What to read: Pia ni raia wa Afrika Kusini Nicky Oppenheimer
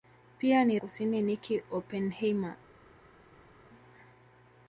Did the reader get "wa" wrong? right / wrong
wrong